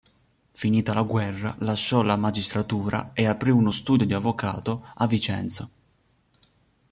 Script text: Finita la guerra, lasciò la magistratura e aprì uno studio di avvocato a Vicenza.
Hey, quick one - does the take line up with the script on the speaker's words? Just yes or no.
yes